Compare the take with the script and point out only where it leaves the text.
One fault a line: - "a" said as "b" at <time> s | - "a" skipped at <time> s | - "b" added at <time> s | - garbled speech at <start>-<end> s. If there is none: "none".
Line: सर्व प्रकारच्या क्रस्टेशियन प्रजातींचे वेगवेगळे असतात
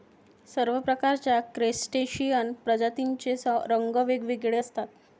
- "रंग" added at 3.7 s